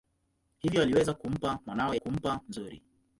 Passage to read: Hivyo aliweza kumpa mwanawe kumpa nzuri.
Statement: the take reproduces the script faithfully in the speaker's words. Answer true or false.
true